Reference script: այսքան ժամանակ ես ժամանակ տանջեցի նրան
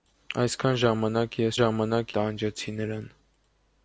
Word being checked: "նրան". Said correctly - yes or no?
yes